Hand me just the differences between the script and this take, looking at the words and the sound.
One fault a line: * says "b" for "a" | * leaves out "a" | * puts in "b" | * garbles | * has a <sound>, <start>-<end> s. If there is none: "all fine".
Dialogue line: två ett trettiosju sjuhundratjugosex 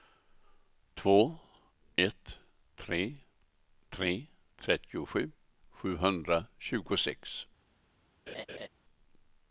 * puts in "tre tre"
* has a laugh, 8.3-8.7 s